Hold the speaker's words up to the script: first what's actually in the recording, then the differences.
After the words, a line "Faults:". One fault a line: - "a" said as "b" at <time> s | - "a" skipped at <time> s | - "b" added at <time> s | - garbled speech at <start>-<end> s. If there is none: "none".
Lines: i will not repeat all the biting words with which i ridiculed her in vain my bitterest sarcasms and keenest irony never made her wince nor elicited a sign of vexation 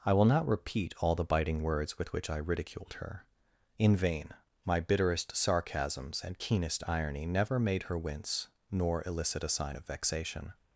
i will not repeat all the biting words with which i ridiculed her in vain my bitterest sarcasms and keenest irony never made her wince nor elicit a sign of vexation
Faults:
- "elicited" said as "elicit" at 9.1 s